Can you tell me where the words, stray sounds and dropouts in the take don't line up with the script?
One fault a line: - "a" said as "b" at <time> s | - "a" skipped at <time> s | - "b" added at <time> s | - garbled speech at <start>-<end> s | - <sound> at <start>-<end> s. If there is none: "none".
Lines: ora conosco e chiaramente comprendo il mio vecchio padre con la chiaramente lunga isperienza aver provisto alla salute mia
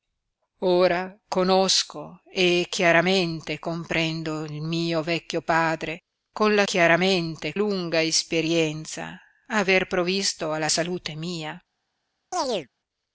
- chirp at 12.3-12.7 s